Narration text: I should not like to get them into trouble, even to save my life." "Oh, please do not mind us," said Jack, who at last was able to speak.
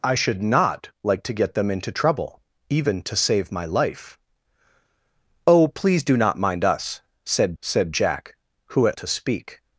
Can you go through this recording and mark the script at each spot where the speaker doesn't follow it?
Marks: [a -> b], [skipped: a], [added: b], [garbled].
I should not like to get them into trouble, even to save my life." "Oh, please do not mind us," said [added: said] Jack, who at [skipped: last was able] to speak.